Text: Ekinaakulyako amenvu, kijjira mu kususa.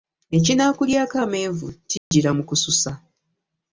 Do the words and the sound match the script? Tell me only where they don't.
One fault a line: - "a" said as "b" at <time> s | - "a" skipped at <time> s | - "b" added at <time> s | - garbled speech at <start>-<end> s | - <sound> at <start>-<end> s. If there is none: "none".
- dropout at 2.0-2.1 s